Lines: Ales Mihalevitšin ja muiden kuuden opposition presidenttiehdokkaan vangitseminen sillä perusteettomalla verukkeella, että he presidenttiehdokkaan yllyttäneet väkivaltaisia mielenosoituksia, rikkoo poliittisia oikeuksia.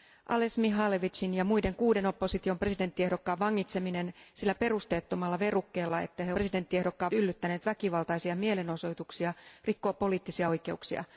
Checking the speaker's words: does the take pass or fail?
pass